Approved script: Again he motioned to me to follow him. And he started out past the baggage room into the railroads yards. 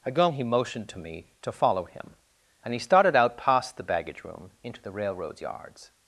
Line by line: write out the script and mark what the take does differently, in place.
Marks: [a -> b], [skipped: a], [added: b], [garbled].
Again he motioned to me to follow him. And he started out past the baggage room into the railroads yards.